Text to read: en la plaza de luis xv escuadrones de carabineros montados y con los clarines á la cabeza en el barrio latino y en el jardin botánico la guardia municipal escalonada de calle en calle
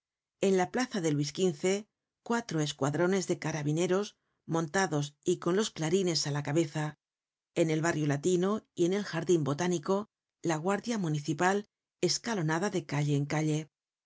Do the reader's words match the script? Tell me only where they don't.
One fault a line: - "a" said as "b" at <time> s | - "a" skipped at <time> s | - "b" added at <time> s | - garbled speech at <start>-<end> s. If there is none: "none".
- "cuatro" added at 2.2 s